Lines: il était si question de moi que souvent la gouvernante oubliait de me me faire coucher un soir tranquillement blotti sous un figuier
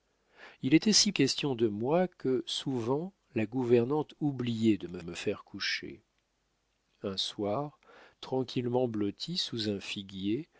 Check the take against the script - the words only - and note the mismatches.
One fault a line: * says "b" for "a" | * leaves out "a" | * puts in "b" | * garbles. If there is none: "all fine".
all fine